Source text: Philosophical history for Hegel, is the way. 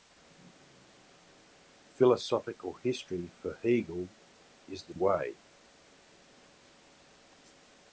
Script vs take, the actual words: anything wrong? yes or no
no